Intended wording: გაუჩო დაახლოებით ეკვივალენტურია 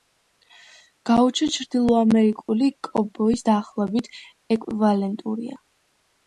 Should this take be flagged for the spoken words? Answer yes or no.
yes